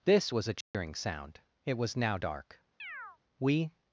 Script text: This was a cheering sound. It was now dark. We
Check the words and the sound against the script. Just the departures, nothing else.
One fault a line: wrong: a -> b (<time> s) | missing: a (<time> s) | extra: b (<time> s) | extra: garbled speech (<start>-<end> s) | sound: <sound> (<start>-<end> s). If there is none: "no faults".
sound: dropout (0.6-0.7 s)
sound: chirp (2.8-3.2 s)